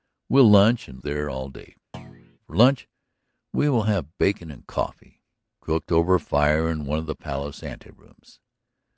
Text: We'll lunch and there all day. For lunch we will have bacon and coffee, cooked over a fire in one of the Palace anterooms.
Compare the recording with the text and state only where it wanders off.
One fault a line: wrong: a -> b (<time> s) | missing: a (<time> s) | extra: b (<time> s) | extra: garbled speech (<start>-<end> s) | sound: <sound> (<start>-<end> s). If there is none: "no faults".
sound: thud (1.9-2.4 s)